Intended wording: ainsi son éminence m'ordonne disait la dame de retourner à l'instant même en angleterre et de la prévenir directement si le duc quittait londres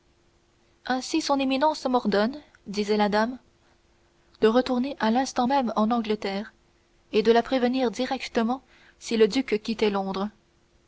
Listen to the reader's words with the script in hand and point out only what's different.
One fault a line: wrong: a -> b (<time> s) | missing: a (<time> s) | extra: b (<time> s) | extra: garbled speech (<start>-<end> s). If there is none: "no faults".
no faults